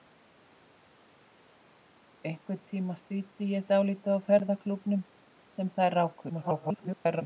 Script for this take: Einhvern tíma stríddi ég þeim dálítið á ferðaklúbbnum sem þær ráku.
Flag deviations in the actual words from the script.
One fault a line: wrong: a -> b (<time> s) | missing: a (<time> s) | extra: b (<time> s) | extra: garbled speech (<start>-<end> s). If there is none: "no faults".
missing: þeim (3.7 s)
extra: garbled speech (6.3-7.2 s)